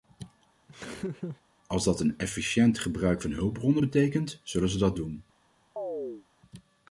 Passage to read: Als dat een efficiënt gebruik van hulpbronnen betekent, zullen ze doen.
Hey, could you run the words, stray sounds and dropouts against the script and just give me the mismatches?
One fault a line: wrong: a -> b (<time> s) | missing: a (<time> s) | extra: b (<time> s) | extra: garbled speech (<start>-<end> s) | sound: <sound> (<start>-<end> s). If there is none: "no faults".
sound: laugh (0.7-1.4 s)
extra: dat (4.8 s)
sound: chirp (5.8-6.3 s)